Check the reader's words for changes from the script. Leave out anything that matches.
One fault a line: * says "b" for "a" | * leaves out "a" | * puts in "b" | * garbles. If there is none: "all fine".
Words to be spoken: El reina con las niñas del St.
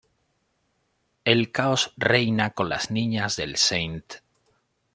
* puts in "caos"